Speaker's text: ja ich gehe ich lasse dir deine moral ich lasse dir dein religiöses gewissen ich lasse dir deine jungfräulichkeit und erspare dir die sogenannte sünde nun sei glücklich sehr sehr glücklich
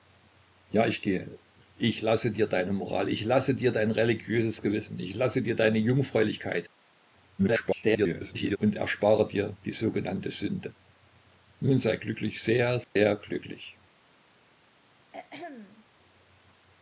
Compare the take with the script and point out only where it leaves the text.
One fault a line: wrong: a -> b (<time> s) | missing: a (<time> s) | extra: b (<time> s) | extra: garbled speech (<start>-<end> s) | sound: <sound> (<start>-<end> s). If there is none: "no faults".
extra: garbled speech (7.4-8.6 s)
sound: dropout (12.8-13.0 s)
sound: throat clearing (15.1-15.8 s)